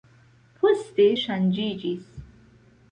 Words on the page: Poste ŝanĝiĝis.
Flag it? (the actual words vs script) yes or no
no